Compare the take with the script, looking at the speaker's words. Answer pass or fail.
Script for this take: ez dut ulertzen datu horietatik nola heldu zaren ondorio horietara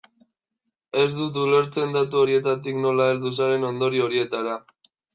pass